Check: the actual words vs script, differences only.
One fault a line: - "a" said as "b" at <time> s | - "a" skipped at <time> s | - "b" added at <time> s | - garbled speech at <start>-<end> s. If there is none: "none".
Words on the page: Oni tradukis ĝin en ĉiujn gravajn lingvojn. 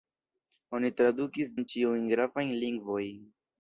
- "ĝin" skipped at 1.5 s